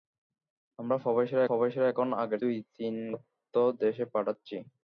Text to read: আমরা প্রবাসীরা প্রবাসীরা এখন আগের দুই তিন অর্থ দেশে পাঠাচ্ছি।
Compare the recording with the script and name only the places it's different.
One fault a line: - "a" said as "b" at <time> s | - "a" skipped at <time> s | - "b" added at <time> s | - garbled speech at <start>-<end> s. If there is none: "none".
none